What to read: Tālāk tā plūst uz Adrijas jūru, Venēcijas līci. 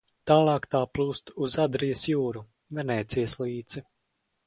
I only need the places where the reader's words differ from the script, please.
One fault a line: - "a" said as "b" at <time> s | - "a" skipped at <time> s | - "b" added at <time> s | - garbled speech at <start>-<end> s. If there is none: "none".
none